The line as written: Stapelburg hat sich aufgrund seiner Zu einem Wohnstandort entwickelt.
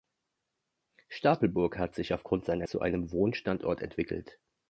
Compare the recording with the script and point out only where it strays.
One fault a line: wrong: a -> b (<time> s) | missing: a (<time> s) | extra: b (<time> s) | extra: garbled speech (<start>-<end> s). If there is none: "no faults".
no faults